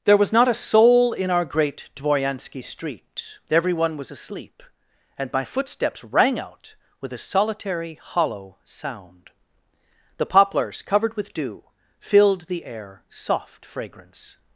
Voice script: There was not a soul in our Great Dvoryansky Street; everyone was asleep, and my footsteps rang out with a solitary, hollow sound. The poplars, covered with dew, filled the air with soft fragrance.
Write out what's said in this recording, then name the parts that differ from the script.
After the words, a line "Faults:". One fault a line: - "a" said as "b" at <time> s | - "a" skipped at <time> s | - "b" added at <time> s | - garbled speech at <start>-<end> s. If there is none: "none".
There was not a soul in our Great Dvoryansky Street; everyone was asleep, and my footsteps rang out with a solitary, hollow sound. The poplars, covered with dew, filled the air soft fragrance.
Faults:
- "with" skipped at 13.0 s